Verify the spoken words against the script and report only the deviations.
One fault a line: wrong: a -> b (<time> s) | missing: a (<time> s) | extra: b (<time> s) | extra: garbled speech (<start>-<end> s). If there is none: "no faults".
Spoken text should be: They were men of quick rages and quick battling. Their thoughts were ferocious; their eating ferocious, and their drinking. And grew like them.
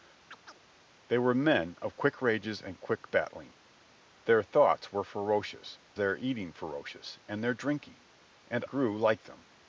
no faults